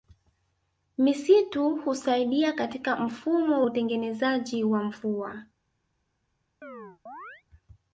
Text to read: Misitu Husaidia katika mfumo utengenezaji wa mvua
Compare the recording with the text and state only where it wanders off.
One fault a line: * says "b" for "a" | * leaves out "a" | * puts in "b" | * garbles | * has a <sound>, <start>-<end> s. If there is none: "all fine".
* has a chirp, 6.6-7.4 s